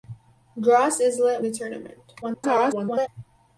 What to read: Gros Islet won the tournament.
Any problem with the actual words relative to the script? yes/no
yes